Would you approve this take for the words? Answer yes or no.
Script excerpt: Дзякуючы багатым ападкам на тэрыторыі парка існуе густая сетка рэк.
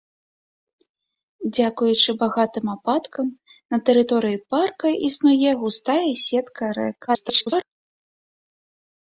no